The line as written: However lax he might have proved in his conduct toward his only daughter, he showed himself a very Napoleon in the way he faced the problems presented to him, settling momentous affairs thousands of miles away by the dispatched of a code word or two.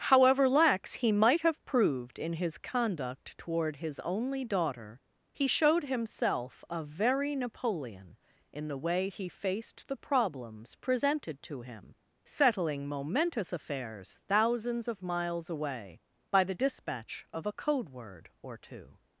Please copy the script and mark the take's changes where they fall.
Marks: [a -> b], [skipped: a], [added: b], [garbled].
However lax he might have proved in his conduct toward his only daughter, he showed himself a very Napoleon in the way he faced the problems presented to him, settling momentous affairs thousands of miles away by the [dispatched -> dispatch] of a code word or two.